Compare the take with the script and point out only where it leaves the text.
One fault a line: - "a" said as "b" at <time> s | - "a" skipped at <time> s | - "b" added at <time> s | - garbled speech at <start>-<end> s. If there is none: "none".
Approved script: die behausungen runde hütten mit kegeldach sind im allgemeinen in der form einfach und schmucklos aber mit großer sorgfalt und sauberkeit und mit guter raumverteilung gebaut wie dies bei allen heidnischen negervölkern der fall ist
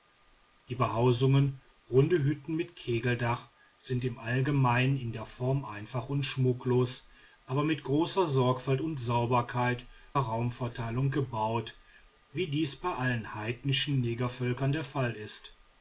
- "und mit guter" skipped at 9.8 s